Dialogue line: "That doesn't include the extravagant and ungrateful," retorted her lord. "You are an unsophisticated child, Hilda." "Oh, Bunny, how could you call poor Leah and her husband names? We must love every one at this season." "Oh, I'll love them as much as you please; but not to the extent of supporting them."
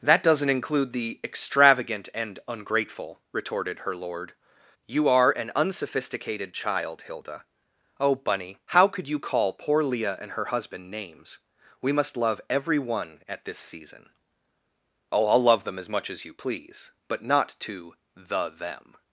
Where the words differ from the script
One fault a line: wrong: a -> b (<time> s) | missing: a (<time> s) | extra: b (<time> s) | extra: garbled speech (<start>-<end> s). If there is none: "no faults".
missing: extent of supporting (18.5 s)